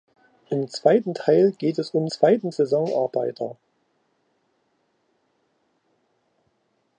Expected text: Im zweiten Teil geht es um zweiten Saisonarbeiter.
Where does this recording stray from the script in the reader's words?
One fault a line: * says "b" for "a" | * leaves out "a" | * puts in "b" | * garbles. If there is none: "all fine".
all fine